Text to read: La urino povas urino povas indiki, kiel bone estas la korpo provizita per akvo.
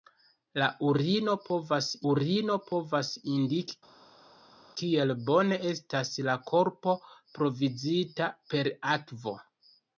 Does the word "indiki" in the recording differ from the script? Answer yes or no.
no